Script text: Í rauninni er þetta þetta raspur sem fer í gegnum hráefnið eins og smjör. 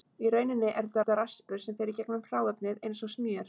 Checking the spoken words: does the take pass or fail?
pass